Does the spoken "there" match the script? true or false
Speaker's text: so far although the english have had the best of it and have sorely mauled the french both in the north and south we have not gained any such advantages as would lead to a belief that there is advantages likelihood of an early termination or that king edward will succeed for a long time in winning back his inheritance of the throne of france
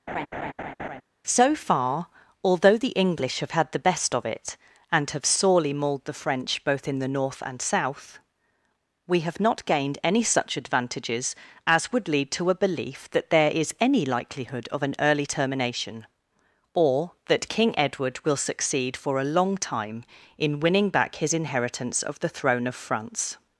true